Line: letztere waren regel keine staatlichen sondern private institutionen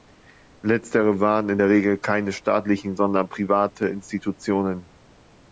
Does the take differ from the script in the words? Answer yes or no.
yes